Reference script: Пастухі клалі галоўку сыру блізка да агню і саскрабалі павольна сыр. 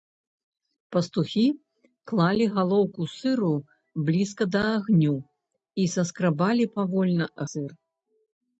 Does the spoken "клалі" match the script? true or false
true